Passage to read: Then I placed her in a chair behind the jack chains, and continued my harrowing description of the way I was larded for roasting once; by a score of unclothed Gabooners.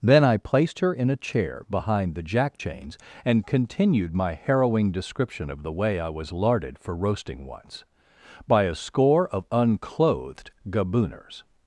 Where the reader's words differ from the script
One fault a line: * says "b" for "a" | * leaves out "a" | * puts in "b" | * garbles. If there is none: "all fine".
all fine